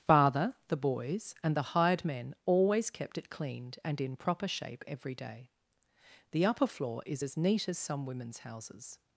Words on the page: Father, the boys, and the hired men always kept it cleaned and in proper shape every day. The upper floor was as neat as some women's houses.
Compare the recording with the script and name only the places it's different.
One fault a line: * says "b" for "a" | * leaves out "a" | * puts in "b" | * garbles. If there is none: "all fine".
* says "is" for "was"